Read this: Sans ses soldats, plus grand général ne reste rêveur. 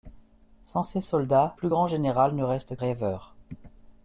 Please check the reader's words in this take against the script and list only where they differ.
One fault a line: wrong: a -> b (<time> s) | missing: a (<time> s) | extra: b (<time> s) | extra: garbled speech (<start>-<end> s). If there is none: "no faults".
no faults